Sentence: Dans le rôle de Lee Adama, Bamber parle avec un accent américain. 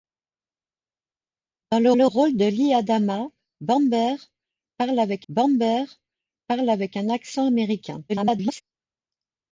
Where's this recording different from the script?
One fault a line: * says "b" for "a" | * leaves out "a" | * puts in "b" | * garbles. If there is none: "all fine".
* puts in "le"
* puts in "Bamber parle avec"
* garbles